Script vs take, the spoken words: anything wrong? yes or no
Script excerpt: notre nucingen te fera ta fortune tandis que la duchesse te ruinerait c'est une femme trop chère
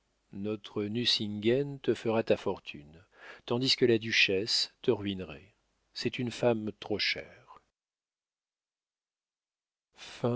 no